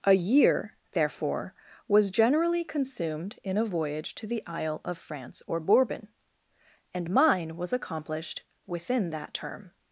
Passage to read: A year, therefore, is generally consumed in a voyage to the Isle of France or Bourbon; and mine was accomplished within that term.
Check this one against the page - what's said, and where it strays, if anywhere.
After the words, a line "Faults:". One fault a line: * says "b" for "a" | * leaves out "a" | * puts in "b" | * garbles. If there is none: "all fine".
A year, therefore, was generally consumed in a voyage to the Isle of France or Bourbon; and mine was accomplished within that term.
Faults:
* says "was" for "is"